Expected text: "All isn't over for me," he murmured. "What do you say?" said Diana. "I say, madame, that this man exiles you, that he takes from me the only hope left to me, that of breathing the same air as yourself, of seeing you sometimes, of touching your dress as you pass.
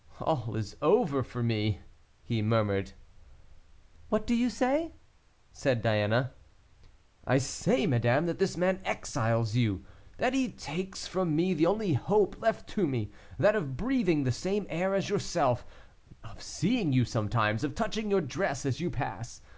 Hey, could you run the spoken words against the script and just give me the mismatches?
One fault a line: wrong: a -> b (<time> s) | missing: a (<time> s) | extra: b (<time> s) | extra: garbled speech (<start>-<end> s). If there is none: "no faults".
wrong: isn't -> is (0.6 s)